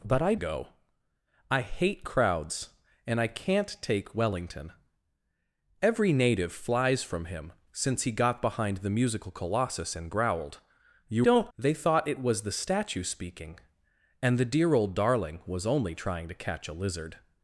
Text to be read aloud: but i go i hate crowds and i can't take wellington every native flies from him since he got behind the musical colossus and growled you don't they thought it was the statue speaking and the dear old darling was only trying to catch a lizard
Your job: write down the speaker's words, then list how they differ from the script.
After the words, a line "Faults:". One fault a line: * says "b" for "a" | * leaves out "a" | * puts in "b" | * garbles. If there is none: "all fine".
but i go i hate crowds and i can't take wellington every native flies from him since he got behind the musical colossus and growled you don't they thought it was the statue speaking and the dear old darling was only trying to catch a lizard
Faults:
all fine